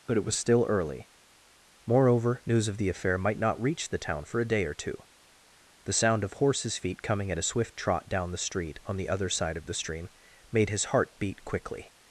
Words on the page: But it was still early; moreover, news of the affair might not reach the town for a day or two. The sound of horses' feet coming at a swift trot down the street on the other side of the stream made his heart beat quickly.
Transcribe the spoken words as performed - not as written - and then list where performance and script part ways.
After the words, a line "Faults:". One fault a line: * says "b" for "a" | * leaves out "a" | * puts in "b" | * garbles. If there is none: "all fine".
But it was still early; moreover, news of the affair might not reach the town for a day or two. The sound of horses' feet coming at a swift trot down the street on the other side of the stream made his heart beat quickly.
Faults:
all fine